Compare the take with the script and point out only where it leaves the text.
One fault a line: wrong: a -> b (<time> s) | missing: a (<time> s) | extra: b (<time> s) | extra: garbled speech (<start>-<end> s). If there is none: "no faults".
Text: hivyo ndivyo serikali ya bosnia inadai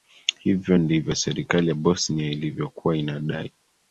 extra: ilivyokuwa (2.3 s)